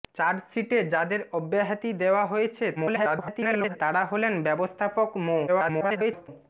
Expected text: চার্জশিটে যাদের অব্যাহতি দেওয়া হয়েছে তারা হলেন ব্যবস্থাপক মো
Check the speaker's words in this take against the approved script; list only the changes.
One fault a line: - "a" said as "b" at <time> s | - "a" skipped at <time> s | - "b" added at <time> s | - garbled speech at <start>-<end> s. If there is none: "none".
- garbled speech at 2.8-3.8 s
- garbled speech at 5.5-6.3 s